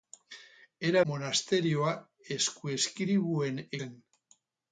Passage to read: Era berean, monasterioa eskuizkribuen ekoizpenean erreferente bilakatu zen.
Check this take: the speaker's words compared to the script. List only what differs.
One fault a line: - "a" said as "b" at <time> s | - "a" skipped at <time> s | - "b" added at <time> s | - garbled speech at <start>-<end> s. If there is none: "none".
- "berean" skipped at 1.0 s
- "ekoizpenean erreferente bilakatu" skipped at 3.6 s